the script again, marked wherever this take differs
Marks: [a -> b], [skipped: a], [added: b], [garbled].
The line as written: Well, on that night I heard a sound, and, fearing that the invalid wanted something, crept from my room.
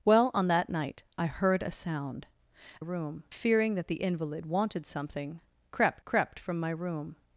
Well, on that night I heard a sound, [and, -> room] fearing that the invalid wanted something, crept [added: crept] from my room.